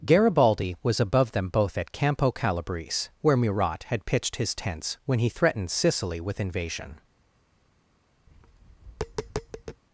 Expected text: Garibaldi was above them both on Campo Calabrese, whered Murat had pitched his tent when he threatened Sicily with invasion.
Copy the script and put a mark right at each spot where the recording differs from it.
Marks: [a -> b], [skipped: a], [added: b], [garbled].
Garibaldi was above them both [on -> at] Campo Calabrese, [whered -> where] Murat had pitched his [tent -> tents] when he threatened Sicily with invasion.